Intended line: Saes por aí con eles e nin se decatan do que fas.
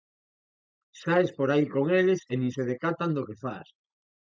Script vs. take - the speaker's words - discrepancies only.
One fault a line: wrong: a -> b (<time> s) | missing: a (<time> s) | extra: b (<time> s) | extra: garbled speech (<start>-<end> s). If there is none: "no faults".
no faults